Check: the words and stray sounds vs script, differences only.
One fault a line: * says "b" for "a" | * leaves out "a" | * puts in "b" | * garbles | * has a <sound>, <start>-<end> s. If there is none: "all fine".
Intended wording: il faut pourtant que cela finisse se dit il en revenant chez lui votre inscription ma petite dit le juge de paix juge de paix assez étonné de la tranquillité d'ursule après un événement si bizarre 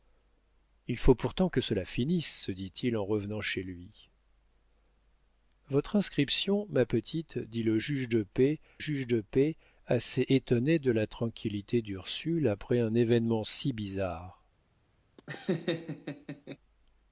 * has a laugh, 15.2-16.6 s